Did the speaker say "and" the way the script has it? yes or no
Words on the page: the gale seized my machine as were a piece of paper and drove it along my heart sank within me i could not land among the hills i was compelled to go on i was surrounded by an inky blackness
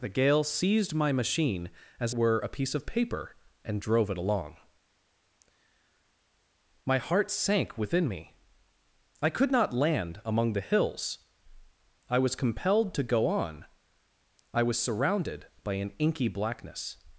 yes